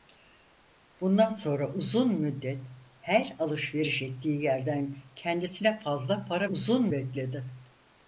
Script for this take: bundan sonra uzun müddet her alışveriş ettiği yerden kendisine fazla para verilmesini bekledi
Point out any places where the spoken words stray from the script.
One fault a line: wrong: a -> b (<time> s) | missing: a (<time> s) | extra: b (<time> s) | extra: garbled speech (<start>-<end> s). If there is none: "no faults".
wrong: verilmesini -> uzun (6.5 s)